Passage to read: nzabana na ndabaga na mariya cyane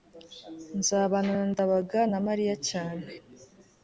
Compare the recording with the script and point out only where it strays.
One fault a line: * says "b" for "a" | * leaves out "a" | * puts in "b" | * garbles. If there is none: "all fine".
all fine